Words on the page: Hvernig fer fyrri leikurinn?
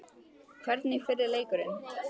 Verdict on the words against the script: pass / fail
fail